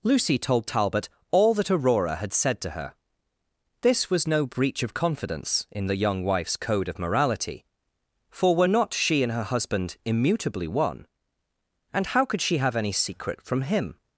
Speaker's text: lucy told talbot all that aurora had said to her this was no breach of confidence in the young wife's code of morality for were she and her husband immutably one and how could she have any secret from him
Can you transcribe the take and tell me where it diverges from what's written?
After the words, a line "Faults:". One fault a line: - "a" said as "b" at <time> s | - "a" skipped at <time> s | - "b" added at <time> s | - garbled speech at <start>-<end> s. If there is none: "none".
lucy told talbot all that aurora had said to her this was no breach of confidence in the young wife's code of morality for were not she and her husband immutably one and how could she have any secret from him
Faults:
- "not" added at 8.6 s